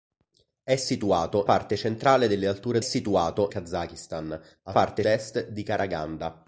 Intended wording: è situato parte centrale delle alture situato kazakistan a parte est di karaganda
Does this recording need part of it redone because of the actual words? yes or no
no